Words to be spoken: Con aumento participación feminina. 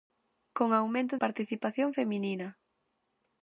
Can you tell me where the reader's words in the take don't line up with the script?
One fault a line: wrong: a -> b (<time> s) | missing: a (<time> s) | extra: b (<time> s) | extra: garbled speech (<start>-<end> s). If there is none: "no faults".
no faults